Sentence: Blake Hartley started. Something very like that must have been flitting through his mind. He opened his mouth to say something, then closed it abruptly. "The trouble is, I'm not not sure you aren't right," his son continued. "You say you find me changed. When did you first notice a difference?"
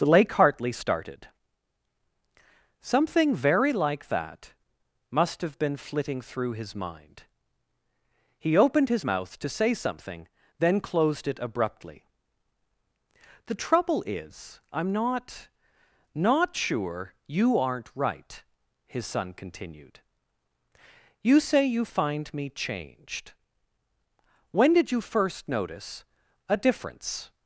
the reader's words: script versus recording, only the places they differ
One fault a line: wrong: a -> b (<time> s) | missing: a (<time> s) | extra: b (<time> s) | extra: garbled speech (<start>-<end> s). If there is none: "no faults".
no faults